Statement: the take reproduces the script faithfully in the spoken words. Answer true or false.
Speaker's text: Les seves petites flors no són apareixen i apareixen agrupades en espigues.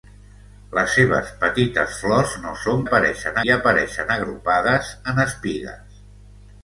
true